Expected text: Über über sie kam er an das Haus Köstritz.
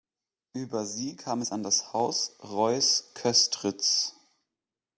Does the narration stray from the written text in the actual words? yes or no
yes